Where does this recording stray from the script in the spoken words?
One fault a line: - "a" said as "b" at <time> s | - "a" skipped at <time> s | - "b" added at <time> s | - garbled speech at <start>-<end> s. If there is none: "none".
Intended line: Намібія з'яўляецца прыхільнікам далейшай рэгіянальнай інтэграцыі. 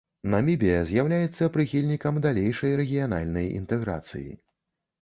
none